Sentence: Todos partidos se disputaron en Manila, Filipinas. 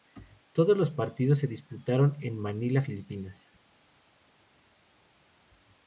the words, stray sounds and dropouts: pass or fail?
fail